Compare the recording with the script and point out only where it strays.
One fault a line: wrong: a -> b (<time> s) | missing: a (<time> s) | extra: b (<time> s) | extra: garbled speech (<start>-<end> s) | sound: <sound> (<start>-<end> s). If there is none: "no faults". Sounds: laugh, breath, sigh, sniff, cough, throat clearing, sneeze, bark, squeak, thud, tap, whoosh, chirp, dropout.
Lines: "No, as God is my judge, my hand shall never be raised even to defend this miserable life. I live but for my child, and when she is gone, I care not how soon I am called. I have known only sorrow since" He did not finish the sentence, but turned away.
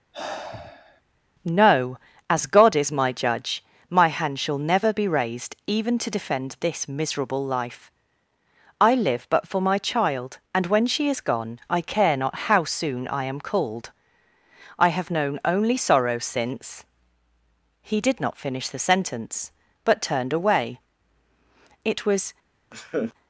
sound: sigh (0.1-1.0 s)
extra: It was (21.8 s)
sound: laugh (22.7-23.1 s)